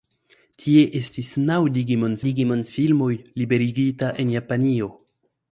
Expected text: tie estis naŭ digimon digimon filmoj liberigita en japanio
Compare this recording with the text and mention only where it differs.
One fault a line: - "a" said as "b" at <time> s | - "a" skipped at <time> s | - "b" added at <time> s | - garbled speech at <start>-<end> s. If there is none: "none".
none